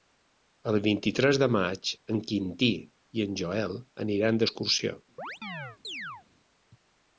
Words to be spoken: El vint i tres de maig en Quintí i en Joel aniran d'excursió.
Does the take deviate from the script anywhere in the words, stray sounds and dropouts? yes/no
yes